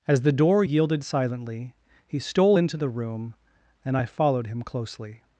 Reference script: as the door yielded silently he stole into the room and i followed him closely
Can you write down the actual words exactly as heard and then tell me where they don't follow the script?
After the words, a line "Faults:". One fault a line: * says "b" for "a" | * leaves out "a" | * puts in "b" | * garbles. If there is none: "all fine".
as the door yielded silently he stole into the room and i followed him closely
Faults:
all fine